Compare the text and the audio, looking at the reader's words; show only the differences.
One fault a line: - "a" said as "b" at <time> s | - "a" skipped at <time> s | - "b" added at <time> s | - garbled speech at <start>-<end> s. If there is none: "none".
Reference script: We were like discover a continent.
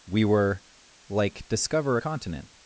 none